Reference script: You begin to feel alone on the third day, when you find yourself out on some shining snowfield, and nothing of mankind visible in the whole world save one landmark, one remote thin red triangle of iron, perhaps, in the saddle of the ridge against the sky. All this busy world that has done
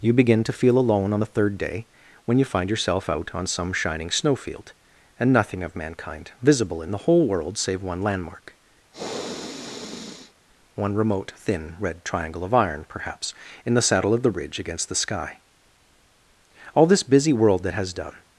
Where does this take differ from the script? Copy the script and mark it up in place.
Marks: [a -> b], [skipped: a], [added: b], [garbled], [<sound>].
You begin to feel alone on the third day, when you find yourself out on some shining snowfield, and nothing of mankind visible in the whole world save one landmark, [sniff] one remote thin red triangle of iron, perhaps, in the saddle of the ridge against the sky. All this busy world that has done